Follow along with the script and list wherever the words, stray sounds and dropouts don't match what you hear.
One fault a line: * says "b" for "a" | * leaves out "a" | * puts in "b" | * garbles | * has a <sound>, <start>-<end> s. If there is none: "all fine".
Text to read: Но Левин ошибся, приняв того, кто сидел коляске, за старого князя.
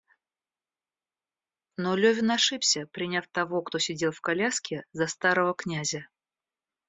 * puts in "в"